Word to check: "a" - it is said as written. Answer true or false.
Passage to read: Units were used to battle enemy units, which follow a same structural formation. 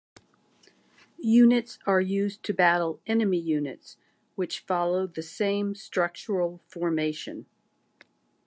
false